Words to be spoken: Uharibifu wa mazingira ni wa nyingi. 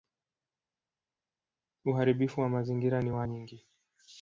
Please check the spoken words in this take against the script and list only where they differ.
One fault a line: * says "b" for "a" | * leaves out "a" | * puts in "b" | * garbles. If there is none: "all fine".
all fine